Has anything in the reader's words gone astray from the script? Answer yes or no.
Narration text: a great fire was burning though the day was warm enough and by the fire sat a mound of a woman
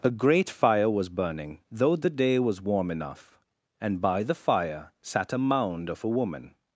no